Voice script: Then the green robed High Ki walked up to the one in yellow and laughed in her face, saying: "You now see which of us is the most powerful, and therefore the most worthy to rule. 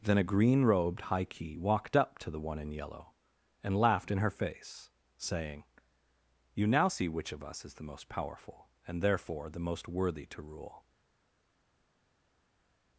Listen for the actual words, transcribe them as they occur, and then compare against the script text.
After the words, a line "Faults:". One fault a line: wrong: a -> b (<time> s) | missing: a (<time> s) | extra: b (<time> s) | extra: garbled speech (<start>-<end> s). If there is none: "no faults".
Then a green robed High Ki walked up to the one in yellow and laughed in her face, saying: "You now see which of us is the most powerful, and therefore the most worthy to rule.
Faults:
wrong: the -> a (0.2 s)